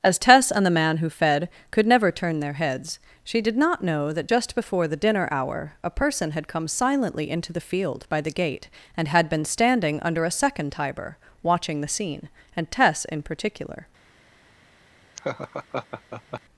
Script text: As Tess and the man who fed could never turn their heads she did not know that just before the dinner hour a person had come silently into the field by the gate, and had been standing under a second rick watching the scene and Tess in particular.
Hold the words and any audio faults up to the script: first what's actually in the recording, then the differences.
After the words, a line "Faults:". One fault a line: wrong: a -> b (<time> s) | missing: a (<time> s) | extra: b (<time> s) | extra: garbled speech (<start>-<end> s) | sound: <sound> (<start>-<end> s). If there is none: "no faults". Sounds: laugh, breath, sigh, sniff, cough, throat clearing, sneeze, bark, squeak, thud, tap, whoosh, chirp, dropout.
As Tess and the man who fed could never turn their heads she did not know that just before the dinner hour a person had come silently into the field by the gate, and had been standing under a second tiber watching the scene and Tess in particular.
Faults:
wrong: rick -> tiber (10.7 s)
sound: laugh (15.2-16.4 s)